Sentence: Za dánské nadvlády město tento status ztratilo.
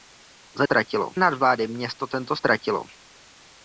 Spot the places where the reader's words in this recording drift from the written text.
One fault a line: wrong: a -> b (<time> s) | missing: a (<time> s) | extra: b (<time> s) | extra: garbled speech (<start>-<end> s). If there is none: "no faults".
wrong: dánské -> ztratilo (0.6 s)
missing: status (2.4 s)